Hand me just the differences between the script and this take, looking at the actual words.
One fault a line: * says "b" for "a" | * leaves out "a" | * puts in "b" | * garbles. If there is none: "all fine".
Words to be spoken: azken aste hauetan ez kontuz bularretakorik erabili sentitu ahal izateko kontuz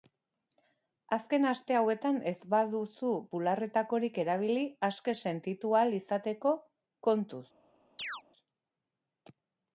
* says "baduzu" for "kontuz"
* puts in "aske"